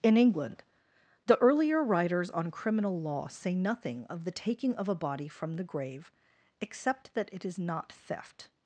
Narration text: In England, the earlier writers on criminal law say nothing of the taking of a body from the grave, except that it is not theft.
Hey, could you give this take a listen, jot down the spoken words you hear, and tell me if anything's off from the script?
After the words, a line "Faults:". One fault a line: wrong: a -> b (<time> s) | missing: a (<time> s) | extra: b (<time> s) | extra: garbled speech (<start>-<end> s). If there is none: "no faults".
In England, the earlier writers on criminal law say nothing of the taking of a body from the grave, except that it is not theft.
Faults:
no faults